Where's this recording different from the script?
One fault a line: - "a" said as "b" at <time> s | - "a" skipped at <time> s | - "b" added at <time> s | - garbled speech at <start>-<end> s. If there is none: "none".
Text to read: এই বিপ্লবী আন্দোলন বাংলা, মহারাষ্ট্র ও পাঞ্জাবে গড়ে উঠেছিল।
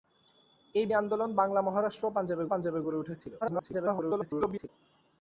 - "বিপ্লবী" skipped at 0.8 s
- "পাঞ্জাবে" added at 2.5 s
- garbled speech at 3.4-4.7 s